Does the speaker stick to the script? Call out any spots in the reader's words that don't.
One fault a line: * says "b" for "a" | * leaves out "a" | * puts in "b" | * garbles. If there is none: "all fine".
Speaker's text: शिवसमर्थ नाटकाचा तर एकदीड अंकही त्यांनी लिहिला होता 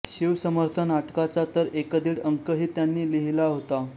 all fine